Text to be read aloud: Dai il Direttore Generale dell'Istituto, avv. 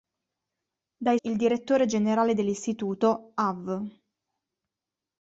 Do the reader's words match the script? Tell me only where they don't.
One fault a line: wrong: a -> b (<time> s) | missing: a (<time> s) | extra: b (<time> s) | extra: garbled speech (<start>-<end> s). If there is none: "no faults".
no faults